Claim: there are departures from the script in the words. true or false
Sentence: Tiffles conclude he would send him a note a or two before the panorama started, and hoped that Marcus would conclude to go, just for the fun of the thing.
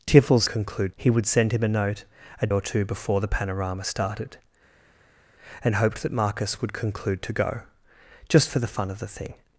false